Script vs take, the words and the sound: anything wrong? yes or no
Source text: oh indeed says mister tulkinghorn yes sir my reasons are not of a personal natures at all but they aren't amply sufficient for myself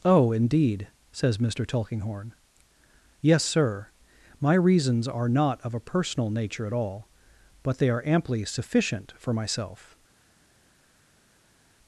yes